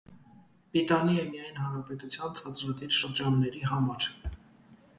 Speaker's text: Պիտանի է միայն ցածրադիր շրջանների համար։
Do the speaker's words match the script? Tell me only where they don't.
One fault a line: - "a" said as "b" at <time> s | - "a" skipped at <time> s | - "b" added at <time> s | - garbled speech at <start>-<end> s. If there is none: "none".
- "հանրապետության" added at 1.6 s